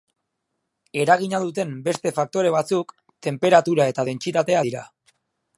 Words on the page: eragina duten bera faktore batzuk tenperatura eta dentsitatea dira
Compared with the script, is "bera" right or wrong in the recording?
wrong